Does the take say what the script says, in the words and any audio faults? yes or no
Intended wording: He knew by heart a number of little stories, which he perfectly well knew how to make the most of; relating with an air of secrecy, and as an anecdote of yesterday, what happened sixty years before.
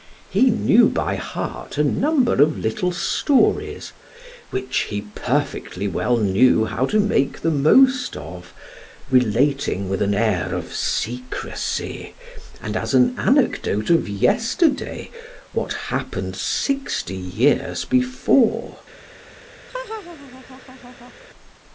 no